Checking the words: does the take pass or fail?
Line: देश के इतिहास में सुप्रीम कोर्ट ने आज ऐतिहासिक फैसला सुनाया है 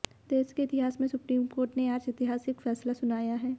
pass